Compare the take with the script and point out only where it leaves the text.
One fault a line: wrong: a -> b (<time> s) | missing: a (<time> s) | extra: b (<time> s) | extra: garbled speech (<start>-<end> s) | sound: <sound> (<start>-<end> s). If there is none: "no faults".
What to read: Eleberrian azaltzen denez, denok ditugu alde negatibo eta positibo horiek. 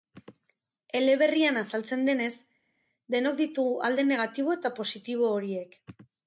no faults